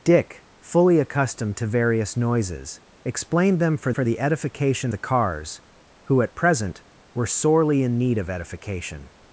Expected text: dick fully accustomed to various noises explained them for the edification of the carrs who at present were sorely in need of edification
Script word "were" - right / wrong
right